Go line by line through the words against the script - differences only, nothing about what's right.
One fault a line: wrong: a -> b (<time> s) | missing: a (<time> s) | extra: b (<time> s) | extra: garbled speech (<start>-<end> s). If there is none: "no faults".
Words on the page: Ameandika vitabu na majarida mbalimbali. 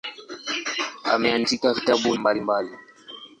missing: na majarida (2.1 s)